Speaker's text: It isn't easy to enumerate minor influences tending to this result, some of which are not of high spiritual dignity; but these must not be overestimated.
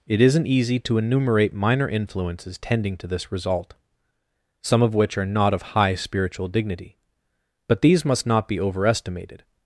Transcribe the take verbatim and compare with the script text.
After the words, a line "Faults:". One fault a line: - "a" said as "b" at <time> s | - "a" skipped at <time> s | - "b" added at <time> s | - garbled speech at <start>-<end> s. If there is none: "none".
It isn't easy to enumerate minor influences tending to this result, some of which are not of high spiritual dignity; but these must not be overestimated.
Faults:
none